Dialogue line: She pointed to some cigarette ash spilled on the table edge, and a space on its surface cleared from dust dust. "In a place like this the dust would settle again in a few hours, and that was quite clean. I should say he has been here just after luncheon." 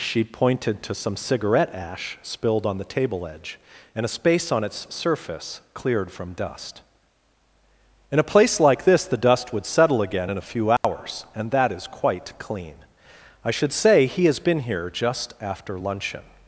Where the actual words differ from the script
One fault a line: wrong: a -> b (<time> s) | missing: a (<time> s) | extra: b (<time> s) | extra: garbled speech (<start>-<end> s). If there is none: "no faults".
missing: dust (6.8 s)
wrong: was -> is (11.7 s)